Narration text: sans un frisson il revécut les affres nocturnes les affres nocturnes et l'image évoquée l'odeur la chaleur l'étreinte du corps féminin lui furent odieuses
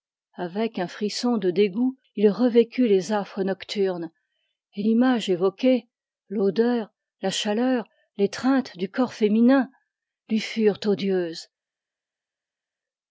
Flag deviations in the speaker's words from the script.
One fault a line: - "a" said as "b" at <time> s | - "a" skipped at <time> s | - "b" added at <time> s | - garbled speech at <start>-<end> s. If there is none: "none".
- "sans" said as "avec" at 0.3 s
- "de dégoût" added at 1.4 s
- "les affres nocturnes" skipped at 4.1 s